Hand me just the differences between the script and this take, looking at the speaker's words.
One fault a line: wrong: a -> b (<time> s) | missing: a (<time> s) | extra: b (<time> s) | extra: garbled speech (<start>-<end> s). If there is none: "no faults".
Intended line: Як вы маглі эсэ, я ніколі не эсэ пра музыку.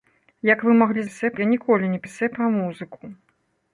no faults